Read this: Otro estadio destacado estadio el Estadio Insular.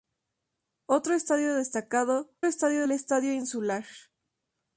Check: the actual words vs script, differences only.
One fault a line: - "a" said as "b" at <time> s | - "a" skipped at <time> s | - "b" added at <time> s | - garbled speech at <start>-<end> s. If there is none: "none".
none